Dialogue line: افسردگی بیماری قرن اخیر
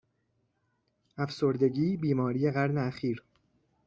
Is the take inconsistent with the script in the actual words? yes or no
no